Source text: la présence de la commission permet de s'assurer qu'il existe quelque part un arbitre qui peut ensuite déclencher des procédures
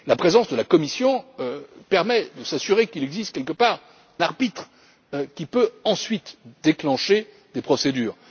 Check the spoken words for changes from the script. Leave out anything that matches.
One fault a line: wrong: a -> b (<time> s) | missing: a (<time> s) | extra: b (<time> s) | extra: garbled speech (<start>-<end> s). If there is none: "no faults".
missing: un (3.8 s)